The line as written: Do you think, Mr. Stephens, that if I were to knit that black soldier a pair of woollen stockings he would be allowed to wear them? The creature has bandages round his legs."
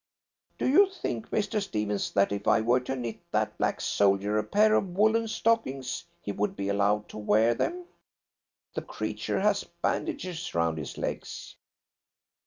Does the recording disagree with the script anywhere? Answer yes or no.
no